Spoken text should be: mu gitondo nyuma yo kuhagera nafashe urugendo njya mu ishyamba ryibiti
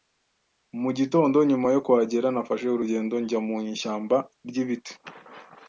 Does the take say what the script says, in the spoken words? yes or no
yes